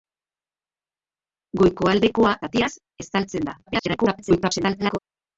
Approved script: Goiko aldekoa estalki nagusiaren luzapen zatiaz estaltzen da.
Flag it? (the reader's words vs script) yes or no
yes